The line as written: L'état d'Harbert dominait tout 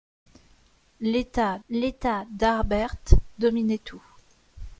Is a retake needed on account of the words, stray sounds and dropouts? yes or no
yes